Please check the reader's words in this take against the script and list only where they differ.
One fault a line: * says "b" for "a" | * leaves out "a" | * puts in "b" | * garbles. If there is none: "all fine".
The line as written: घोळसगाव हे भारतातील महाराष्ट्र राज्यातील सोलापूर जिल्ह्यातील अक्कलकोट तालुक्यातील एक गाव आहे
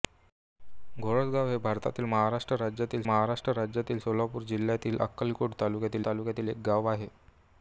* puts in "महाराष्ट्र राज्यातील"
* puts in "तालुक्यातील"